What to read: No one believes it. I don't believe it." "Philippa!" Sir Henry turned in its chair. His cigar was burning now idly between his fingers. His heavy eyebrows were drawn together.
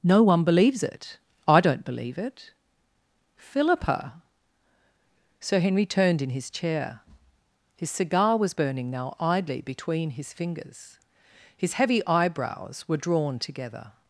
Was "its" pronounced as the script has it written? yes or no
no